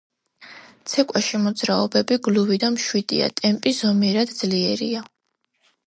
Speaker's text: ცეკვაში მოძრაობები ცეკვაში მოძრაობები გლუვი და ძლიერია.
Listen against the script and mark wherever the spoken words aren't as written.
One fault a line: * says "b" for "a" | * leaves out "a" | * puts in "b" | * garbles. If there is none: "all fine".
* says "გლუვი და მშვიდია ტემპი ზომიერად" for "ცეკვაში მოძრაობები გლუვი და"